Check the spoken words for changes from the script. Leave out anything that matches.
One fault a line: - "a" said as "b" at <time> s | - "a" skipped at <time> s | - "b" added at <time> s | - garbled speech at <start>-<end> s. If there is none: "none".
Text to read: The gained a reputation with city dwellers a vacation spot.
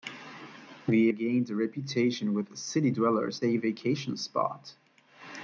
none